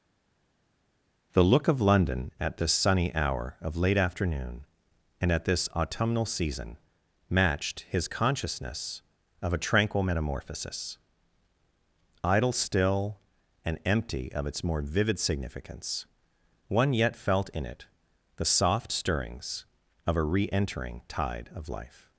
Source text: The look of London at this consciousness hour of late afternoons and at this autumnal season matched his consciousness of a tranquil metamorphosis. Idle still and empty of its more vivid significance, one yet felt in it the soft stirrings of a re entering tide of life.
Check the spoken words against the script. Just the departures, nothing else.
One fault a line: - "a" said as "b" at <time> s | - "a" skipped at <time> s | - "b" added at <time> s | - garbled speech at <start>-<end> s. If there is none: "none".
- "consciousness" said as "sunny" at 2.7 s
- "afternoons" said as "afternoon" at 4.0 s